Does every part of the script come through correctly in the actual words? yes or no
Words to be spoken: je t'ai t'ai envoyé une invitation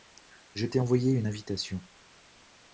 no